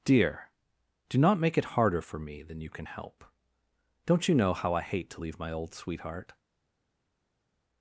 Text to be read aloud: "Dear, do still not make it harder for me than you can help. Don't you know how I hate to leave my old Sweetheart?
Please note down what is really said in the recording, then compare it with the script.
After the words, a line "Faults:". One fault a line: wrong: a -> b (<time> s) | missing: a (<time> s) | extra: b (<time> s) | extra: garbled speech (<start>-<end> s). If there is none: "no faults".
"Dear, do not make it harder for me than you can help. Don't you know how I hate to leave my old Sweetheart?
Faults:
missing: still (1.2 s)